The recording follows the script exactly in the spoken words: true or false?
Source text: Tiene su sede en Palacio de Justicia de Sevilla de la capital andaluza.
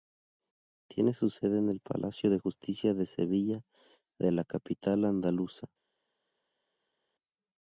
false